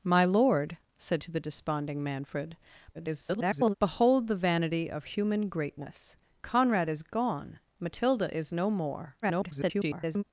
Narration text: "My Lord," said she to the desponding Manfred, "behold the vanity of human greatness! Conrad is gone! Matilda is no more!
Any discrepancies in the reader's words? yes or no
yes